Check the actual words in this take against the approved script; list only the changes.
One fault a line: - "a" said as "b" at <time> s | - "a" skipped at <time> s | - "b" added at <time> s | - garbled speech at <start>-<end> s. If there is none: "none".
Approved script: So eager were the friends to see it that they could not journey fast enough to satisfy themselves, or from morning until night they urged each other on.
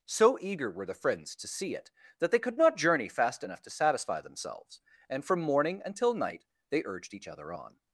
- "or" said as "and" at 5.1 s